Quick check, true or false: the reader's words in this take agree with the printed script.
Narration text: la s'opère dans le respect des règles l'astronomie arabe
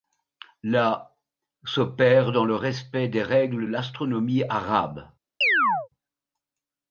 true